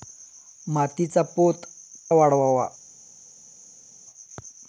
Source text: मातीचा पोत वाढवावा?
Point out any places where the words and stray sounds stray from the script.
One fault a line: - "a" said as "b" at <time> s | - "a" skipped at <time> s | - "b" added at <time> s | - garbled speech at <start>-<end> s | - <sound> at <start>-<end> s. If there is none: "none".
none